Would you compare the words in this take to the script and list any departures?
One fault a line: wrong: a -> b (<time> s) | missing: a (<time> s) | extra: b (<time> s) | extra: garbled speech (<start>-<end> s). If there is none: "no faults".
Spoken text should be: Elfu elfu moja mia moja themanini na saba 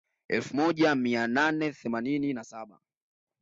missing: elfu (0.6 s)
wrong: moja -> nane (1.3 s)